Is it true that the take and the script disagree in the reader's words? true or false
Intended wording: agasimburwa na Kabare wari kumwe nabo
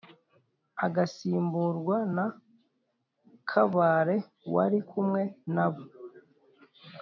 false